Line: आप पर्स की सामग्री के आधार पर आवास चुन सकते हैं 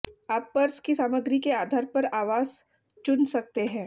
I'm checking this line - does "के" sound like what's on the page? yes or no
yes